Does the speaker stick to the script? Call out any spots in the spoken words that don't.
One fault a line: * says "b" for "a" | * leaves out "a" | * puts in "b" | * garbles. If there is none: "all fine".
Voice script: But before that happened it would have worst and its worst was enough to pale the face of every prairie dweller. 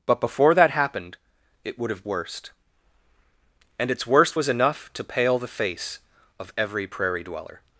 all fine